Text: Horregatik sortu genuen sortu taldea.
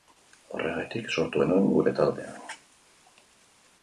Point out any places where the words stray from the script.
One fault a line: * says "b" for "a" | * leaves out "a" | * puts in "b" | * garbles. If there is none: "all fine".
* says "gure" for "sortu"